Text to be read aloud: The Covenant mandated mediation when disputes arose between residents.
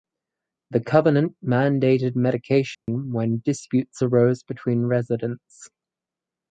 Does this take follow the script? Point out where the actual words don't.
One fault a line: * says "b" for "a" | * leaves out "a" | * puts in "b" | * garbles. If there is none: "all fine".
all fine